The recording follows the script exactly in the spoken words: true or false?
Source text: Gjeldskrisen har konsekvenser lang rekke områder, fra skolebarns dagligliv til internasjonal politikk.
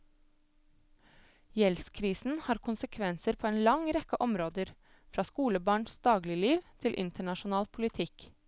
false